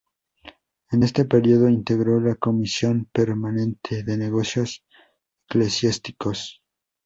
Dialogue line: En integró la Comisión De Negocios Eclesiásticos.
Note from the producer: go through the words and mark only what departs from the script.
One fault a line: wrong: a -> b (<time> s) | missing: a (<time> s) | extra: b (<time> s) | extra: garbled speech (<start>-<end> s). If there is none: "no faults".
extra: este período (1.0 s)
extra: Permanente (3.1 s)